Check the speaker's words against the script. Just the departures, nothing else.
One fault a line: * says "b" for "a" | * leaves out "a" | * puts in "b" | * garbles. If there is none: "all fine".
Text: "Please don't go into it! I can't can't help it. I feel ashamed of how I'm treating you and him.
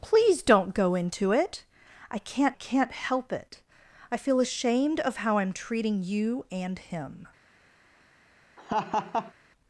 all fine